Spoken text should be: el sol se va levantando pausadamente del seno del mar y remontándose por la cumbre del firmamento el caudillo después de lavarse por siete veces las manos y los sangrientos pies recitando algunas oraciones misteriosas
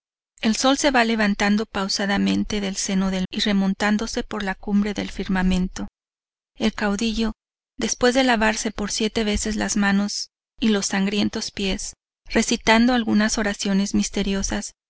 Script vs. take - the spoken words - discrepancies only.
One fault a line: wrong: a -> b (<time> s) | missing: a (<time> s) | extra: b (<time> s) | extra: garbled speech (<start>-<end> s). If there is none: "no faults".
missing: mar (3.3 s)